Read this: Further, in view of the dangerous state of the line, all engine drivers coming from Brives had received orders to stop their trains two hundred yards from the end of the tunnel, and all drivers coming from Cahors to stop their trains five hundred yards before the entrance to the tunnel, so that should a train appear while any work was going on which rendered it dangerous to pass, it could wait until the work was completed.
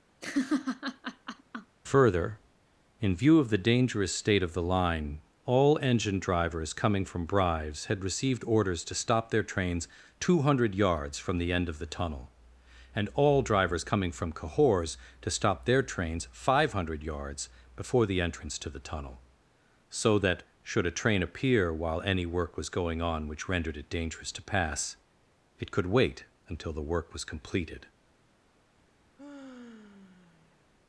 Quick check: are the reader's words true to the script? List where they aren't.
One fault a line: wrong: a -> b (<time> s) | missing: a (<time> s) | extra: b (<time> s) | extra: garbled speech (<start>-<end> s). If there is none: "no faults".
no faults